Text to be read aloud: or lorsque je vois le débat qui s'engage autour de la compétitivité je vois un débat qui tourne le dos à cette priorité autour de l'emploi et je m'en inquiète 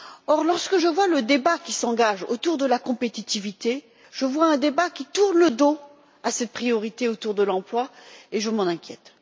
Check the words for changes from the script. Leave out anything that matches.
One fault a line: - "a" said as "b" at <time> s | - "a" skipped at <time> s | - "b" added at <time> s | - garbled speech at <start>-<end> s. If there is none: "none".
none